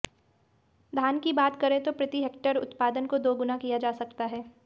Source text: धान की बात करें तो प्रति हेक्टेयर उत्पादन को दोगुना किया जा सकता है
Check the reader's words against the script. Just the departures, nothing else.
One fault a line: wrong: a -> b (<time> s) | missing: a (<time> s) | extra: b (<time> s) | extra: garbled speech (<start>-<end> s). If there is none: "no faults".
no faults